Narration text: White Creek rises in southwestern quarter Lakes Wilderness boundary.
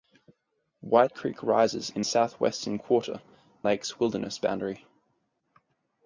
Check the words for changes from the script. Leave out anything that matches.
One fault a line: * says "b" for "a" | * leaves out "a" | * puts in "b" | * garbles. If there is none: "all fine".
all fine